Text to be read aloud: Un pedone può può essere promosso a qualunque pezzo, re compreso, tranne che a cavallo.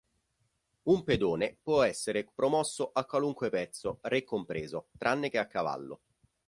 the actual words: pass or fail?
fail